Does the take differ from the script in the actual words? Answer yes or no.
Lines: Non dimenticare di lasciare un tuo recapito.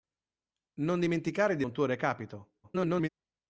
yes